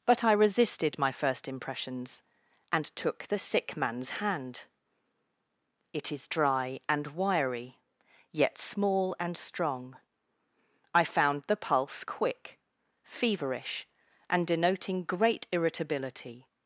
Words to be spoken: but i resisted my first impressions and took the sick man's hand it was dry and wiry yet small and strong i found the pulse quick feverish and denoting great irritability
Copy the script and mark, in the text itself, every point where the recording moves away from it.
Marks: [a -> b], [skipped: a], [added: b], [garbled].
but i resisted my first impressions and took the sick man's hand it [was -> is] dry and wiry yet small and strong i found the pulse quick feverish and denoting great irritability